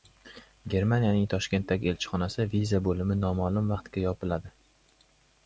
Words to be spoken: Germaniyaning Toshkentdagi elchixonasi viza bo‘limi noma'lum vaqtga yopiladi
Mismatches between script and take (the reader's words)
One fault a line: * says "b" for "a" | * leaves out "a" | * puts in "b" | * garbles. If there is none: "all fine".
all fine